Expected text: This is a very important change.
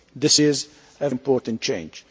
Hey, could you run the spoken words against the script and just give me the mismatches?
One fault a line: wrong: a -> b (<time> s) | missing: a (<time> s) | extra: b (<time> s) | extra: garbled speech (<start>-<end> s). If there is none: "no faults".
missing: very (1.1 s)